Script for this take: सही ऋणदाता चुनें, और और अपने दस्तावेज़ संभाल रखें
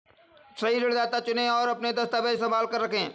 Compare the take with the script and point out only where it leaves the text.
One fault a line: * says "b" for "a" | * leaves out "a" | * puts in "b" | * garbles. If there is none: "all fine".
* leaves out "और"
* puts in "कर"